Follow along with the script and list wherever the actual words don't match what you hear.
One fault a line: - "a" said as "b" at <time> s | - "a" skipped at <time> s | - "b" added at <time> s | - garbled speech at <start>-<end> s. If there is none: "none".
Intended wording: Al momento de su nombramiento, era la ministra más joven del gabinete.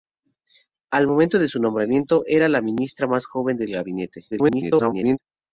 - garbled speech at 4.3-5.2 s